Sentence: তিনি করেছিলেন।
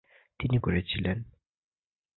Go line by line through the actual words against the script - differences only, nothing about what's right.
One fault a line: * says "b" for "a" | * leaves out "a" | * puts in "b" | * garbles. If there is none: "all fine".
all fine